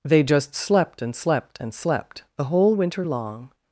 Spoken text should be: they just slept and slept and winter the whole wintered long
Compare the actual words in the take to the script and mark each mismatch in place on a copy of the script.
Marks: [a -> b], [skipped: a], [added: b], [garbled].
they just slept and slept and [winter -> slept] the whole [wintered -> winter] long